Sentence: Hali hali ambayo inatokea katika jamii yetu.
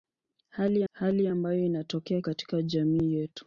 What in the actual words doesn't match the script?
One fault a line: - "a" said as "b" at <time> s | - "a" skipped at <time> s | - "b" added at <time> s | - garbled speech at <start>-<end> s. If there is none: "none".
none